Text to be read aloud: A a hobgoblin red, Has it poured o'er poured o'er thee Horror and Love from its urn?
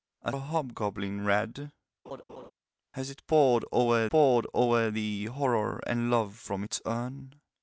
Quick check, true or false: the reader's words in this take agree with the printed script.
true